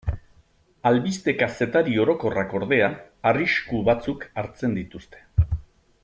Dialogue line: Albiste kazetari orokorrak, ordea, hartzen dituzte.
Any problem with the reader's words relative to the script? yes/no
yes